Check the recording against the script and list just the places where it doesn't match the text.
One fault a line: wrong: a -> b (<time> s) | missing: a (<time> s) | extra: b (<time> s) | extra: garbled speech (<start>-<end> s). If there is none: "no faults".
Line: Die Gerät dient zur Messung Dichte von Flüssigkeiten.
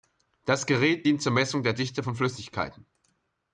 wrong: Die -> Das (0.5 s)
extra: der (1.6 s)